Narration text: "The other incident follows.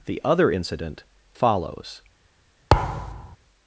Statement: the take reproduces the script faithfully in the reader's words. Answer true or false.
true